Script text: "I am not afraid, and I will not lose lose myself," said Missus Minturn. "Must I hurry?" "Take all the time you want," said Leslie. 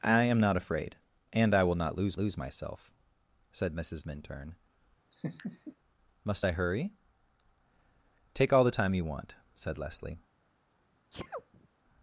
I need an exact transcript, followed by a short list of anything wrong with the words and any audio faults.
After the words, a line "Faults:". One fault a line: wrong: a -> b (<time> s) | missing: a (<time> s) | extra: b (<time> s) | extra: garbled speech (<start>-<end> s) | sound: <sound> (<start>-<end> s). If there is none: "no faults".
"I am not afraid, and I will not lose lose myself," said Missus Minturn. "Must I hurry?" "Take all the time you want," said Leslie.
Faults:
sound: laugh (5.1-5.8 s)
sound: sneeze (11.1-11.7 s)